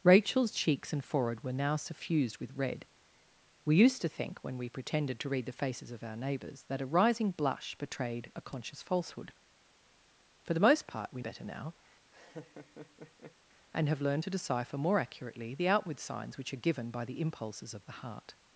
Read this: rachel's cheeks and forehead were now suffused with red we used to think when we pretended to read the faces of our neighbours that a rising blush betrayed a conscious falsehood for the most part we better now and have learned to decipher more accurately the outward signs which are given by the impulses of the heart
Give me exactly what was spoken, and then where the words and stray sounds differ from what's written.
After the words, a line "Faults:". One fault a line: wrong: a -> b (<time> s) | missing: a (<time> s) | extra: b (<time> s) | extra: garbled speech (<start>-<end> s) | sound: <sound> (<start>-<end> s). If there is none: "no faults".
rachel's cheeks and forehead were now suffused with red we used to think when we pretended to read the faces of our neighbours that a rising blush betrayed a conscious falsehood for the most part we better now and have learned to decipher more accurately the outward signs which are given by the impulses of the heart
Faults:
sound: laugh (12.1-13.4 s)